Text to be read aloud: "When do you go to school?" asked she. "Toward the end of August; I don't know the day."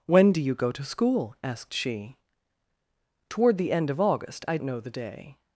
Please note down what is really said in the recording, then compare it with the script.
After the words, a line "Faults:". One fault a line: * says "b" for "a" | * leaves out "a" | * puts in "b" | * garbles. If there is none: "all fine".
"When do you go to school?" asked she. "Toward the end of August; I know the day."
Faults:
* leaves out "don't"